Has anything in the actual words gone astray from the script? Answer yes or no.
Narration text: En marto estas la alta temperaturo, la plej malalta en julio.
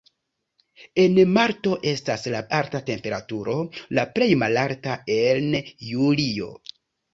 no